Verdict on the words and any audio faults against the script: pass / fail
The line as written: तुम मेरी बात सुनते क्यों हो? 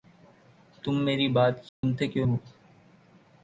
fail